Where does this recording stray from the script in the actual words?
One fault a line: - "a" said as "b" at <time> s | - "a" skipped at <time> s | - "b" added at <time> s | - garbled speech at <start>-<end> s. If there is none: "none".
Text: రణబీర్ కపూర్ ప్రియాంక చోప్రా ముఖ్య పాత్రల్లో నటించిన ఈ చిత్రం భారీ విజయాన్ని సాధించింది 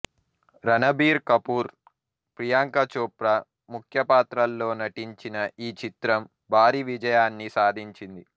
none